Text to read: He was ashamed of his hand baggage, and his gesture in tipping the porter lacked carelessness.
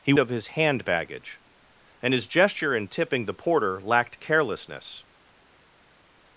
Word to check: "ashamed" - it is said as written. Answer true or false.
false